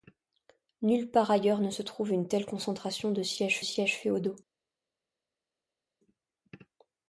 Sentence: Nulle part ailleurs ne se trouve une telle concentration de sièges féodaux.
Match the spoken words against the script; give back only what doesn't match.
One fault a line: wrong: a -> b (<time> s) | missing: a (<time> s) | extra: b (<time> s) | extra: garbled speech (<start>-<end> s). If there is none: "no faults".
extra: sièges (3.6 s)